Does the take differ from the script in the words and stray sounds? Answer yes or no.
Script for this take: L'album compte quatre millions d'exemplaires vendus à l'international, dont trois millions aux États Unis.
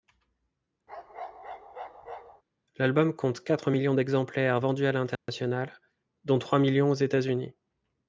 yes